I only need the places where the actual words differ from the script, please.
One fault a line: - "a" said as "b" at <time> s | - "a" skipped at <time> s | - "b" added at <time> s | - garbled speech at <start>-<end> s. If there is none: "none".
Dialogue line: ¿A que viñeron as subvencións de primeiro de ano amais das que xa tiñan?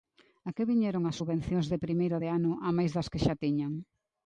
none